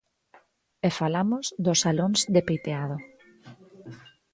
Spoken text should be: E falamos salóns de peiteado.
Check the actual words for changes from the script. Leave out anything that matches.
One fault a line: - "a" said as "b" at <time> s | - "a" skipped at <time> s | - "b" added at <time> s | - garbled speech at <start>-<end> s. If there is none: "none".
- "dos" added at 1.6 s